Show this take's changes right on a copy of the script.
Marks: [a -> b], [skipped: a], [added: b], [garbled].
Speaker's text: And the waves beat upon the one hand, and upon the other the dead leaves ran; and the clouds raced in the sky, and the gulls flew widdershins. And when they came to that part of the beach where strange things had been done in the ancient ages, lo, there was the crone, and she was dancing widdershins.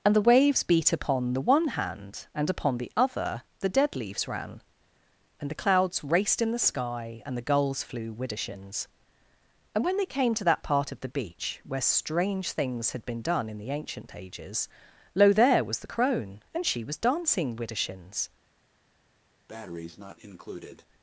And the waves beat upon the one hand, and upon the other the dead leaves ran; and the clouds raced in the sky, and the gulls flew widdershins. And when they came to that part of the beach where strange things had been done in the ancient ages, lo, there was the crone, and she was dancing widdershins.